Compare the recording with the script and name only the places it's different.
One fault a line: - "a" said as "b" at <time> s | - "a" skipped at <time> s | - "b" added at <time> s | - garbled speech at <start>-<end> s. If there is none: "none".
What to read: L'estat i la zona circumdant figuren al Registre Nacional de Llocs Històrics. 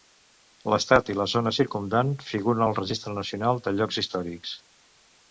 none